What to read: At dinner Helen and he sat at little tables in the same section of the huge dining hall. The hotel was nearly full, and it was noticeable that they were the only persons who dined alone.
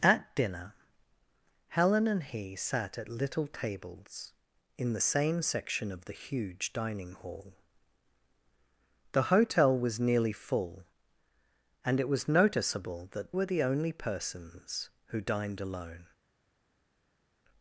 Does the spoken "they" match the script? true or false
false